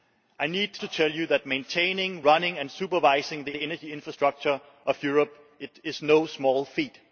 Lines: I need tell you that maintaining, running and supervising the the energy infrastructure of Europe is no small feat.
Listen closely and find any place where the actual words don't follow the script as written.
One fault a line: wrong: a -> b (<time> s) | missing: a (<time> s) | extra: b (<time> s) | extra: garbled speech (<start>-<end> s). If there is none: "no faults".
no faults